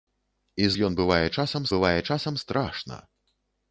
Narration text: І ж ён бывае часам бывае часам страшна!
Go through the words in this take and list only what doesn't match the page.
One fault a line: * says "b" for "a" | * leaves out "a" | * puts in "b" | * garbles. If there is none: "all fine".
all fine